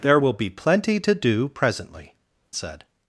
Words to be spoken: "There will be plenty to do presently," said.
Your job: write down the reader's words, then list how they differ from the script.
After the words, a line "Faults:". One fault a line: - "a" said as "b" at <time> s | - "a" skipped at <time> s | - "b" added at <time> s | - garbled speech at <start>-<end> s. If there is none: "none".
"There will be plenty to do presently," said.
Faults:
none